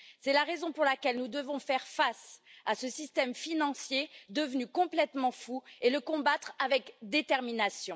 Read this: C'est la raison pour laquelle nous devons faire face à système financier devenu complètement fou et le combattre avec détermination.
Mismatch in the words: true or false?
true